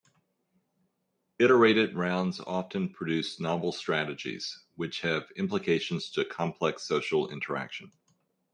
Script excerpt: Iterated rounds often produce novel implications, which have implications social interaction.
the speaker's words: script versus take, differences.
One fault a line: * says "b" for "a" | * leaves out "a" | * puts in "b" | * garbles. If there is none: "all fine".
* says "strategies" for "implications"
* puts in "to complex"